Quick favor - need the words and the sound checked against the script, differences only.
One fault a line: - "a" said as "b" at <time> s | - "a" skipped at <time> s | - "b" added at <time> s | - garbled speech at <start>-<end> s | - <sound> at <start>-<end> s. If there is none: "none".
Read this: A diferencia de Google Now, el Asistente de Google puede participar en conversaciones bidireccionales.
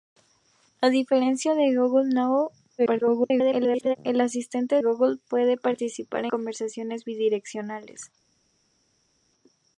- garbled speech at 2.8-4.0 s
- "de" skipped at 4.8 s
- "en" skipped at 6.3 s